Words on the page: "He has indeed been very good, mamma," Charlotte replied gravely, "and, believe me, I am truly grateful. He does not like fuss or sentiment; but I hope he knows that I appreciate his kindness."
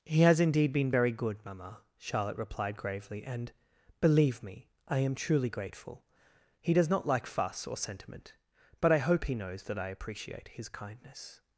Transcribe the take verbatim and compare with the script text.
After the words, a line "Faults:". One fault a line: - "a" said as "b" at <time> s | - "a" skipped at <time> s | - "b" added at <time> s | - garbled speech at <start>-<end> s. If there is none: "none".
"He has indeed been very good, mamma," Charlotte replied gravely, "and, believe me, I am truly grateful. He does not like fuss or sentiment; but I hope he knows that I appreciate his kindness."
Faults:
none